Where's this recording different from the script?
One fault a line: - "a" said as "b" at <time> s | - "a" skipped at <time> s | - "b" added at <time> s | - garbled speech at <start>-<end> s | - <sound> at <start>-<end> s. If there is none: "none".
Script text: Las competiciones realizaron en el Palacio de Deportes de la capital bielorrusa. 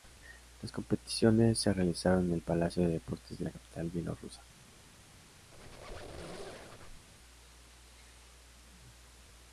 - "se" added at 1.6 s
- squeak at 5.5-7.1 s